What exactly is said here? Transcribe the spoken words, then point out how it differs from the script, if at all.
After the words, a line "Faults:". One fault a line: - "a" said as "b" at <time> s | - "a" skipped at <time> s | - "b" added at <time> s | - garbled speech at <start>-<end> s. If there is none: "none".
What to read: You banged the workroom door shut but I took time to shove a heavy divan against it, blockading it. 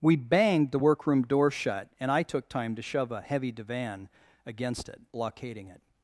We banged the workroom door shut and I took time to shove a heavy divan against it, blockading it.
Faults:
- "You" said as "We" at 0.0 s
- "but" said as "and" at 2.0 s